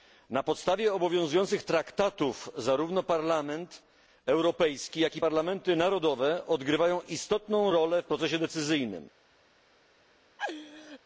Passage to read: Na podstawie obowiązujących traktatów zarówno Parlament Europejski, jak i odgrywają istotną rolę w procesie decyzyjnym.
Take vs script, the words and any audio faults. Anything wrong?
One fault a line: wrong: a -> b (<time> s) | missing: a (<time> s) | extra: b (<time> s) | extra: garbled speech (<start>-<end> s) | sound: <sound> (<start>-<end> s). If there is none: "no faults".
extra: parlamenty narodowe (5.2 s)
sound: laugh (10.4-11.0 s)